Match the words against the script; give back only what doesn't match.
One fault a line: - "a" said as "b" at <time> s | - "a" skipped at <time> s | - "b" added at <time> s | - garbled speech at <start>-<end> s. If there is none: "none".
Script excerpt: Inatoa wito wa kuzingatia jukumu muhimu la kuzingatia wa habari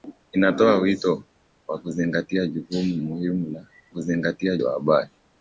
none